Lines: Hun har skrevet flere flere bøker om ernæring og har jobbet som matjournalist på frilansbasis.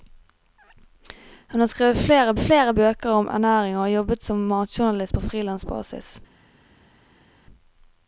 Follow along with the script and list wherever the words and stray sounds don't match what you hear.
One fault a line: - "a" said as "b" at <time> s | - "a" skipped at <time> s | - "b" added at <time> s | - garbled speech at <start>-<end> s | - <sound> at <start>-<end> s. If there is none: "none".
none